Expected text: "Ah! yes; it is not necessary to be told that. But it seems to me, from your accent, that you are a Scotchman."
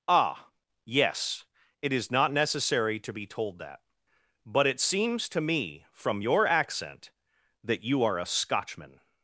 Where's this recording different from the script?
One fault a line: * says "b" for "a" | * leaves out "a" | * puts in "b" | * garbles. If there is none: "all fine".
all fine